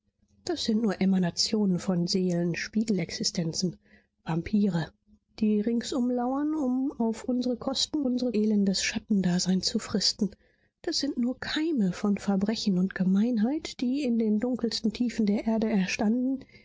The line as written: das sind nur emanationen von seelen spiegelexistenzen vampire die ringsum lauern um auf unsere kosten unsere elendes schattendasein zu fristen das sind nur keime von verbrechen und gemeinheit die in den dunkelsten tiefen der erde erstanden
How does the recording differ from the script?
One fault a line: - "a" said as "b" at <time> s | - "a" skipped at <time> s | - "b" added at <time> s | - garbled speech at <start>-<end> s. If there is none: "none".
none